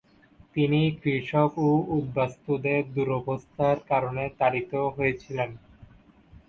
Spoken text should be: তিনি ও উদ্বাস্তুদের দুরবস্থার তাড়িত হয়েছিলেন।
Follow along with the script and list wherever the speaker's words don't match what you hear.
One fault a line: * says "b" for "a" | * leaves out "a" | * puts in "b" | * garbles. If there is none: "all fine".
* puts in "কৃষক"
* puts in "কারণে"